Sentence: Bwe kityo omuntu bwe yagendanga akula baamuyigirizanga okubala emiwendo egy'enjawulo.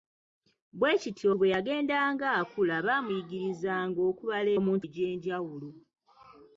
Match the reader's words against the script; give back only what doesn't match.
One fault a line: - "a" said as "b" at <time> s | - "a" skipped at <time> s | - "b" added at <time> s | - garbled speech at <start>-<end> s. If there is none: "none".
- "omuntu" skipped at 1.3 s
- "emiwendo" said as "omuntu" at 4.6 s